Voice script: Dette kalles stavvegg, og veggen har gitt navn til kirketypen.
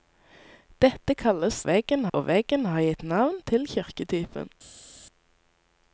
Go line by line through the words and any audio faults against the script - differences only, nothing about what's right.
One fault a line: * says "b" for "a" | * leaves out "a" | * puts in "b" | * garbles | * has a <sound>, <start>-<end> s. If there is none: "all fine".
* says "veggen" for "stavvegg"